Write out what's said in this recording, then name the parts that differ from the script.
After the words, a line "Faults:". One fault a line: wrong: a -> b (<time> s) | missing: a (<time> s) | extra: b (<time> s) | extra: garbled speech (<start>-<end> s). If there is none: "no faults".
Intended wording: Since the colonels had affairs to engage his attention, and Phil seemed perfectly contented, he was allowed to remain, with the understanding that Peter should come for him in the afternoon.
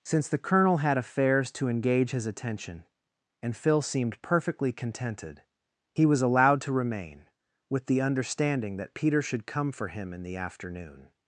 Since the colonel had affairs to engage his attention, and Phil seemed perfectly contented, he was allowed to remain, with the understanding that Peter should come for him in the afternoon.
Faults:
wrong: colonels -> colonel (0.4 s)